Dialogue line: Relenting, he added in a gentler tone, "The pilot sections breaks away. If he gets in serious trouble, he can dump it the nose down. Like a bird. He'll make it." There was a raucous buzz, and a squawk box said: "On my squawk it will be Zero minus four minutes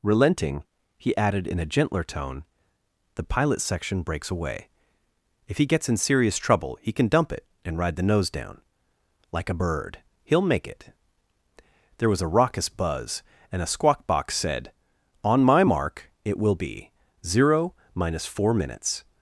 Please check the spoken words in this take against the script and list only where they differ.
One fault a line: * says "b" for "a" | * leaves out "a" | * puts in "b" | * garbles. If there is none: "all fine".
* says "section" for "sections"
* puts in "and ride"
* says "mark" for "squawk"